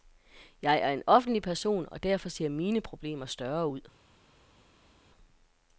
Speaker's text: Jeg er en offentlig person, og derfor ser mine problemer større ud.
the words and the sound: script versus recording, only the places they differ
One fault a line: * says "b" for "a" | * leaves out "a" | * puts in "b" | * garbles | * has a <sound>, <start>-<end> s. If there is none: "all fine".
all fine